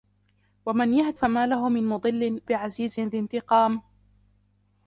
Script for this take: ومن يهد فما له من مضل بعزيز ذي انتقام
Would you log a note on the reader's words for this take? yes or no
no